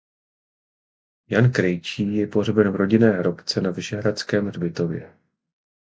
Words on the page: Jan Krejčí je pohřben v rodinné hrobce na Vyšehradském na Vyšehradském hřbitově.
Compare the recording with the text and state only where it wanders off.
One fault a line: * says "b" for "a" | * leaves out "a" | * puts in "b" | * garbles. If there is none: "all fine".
* leaves out "na Vyšehradském"